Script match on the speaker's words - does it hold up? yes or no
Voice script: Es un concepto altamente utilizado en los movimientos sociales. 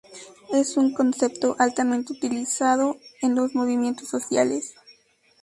yes